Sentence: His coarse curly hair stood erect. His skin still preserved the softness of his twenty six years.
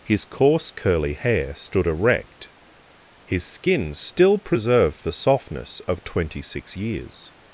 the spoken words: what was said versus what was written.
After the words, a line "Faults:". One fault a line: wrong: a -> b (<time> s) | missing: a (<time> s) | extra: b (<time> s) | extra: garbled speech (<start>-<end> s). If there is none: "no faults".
His coarse curly hair stood erect. His skin still preserved the softness of twenty six years.
Faults:
missing: his (6.0 s)